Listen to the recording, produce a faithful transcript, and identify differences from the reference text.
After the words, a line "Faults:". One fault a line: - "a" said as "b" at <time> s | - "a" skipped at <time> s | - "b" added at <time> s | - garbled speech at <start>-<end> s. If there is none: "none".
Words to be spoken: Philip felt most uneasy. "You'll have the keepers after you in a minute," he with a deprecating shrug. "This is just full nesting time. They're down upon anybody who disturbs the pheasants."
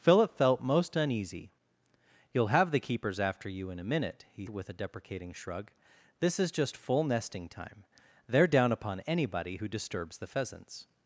Philip felt most uneasy. "You'll have the keepers after you in a minute," he with a deprecating shrug. "This is just full nesting time. They're down upon anybody who disturbs the pheasants."
Faults:
none